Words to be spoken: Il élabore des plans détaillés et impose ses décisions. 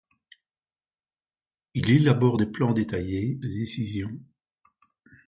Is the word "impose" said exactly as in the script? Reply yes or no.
no